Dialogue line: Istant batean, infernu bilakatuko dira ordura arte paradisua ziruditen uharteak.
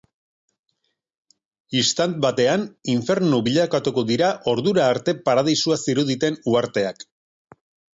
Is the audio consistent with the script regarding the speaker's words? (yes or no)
yes